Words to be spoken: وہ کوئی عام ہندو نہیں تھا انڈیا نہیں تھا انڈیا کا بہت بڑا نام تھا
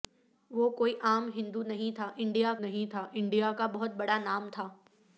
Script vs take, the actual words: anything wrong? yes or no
no